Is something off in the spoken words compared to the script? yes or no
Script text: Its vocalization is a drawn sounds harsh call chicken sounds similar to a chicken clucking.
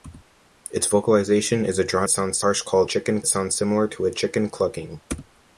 no